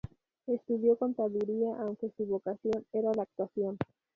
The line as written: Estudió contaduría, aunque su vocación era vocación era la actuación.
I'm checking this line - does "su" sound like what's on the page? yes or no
yes